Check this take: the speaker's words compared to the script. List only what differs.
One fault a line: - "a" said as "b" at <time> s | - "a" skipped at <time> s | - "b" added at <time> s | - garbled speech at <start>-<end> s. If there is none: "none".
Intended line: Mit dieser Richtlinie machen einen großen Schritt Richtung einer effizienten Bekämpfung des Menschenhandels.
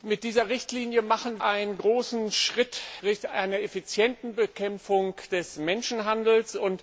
none